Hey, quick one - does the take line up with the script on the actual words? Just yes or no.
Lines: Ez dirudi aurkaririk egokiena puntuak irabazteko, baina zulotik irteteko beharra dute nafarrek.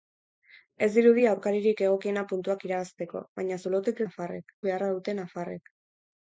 no